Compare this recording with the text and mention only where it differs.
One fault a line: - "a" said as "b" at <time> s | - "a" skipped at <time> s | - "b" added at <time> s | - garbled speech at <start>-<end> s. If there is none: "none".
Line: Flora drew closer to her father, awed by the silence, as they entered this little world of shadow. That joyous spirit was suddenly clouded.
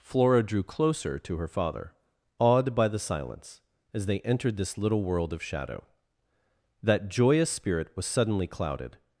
none